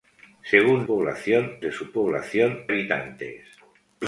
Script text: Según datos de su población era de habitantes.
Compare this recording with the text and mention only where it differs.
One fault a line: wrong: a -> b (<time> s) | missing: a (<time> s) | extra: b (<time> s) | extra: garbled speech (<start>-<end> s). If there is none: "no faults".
wrong: datos -> población (0.8 s)
missing: era de (2.7 s)